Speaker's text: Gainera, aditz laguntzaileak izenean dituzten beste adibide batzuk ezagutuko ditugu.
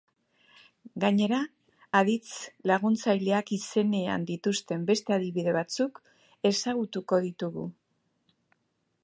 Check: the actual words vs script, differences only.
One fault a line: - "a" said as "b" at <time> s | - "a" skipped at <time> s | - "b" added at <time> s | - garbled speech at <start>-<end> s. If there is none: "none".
none